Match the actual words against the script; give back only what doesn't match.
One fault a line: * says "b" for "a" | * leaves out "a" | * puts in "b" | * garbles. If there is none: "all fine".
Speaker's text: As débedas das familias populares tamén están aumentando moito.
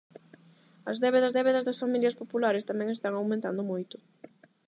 * puts in "débedas"